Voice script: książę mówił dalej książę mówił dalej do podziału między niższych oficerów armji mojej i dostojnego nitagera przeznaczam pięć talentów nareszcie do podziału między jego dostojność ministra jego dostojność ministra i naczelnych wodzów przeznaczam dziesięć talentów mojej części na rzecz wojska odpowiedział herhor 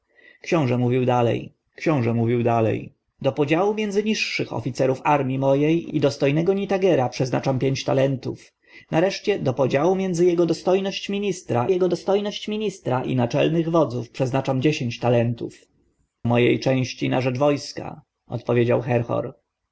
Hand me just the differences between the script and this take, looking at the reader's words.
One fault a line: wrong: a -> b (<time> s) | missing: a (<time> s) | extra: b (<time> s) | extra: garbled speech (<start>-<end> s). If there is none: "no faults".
no faults